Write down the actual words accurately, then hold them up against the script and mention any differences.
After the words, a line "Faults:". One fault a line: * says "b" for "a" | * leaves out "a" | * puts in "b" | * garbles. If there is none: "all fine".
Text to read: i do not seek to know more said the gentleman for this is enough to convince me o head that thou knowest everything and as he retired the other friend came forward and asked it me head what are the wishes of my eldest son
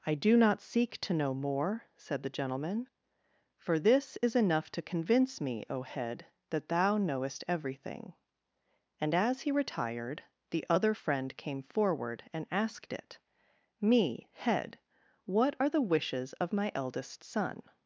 i do not seek to know more said the gentleman for this is enough to convince me o head that thou knowest everything and as he retired the other friend came forward and asked it me head what are the wishes of my eldest son
Faults:
all fine